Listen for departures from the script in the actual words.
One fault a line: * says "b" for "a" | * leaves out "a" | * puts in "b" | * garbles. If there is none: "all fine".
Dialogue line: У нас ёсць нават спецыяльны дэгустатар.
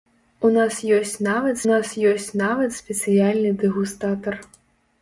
* puts in "нас ёсць нават"